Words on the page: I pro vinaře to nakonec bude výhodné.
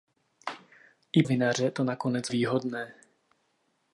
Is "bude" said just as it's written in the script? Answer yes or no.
no